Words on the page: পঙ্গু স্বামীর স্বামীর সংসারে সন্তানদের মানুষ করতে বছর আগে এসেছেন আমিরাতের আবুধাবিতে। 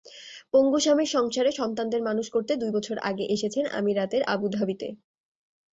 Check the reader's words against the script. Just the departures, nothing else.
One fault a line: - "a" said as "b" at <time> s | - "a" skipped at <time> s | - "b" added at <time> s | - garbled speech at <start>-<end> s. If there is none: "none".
- "স্বামীর" skipped at 1.1 s
- "দুই" added at 2.5 s